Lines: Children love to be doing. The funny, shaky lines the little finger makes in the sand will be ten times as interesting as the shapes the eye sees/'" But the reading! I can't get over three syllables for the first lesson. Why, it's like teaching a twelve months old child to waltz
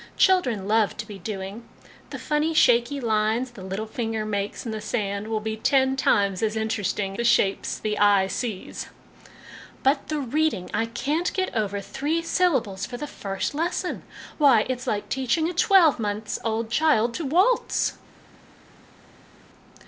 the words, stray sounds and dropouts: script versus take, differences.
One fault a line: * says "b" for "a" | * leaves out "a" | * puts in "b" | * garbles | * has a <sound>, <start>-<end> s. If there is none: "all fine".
* leaves out "as"